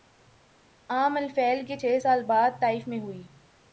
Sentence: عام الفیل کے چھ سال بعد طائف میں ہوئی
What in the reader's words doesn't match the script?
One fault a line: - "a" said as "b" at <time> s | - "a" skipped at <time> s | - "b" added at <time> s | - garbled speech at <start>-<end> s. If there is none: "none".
none